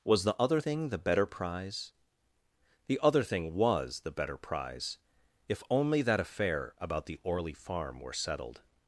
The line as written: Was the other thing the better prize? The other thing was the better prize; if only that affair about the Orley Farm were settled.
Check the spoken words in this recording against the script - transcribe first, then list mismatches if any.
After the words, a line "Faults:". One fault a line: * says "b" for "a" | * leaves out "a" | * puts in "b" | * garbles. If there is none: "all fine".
Was the other thing the better prize? The other thing was the better prize; if only that affair about the Orley Farm were settled.
Faults:
all fine